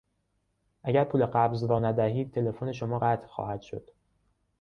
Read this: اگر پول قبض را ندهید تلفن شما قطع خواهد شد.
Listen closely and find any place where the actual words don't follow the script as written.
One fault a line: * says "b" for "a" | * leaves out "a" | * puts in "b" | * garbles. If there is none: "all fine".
all fine